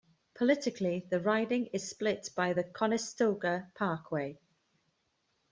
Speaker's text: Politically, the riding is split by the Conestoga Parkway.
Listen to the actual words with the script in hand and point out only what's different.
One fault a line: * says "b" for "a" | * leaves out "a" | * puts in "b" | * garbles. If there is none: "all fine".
all fine